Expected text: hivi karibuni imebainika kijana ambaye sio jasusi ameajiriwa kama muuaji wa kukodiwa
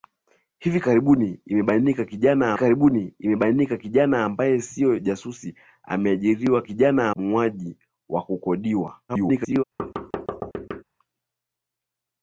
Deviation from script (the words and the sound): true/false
true